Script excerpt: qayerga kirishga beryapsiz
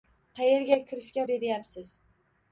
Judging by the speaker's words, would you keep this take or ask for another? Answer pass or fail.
pass